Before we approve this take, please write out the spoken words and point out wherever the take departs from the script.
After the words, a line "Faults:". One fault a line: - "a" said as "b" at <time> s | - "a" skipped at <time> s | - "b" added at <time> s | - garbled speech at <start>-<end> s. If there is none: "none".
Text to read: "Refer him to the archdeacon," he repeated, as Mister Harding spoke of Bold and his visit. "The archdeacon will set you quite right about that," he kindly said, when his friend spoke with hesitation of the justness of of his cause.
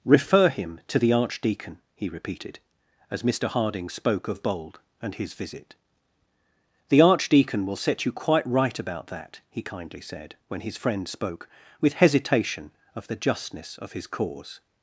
"Refer him to the archdeacon," he repeated, as Mister Harding spoke of Bold and his visit. "The archdeacon will set you quite right about that," he kindly said, when his friend spoke with hesitation of the justness of his cause.
Faults:
- "of" skipped at 13.9 s